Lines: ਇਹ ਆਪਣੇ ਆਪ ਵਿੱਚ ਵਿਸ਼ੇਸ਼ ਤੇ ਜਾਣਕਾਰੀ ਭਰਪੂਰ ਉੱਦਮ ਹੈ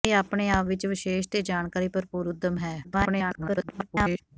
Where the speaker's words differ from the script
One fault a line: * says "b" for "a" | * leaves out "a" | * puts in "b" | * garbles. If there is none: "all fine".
* garbles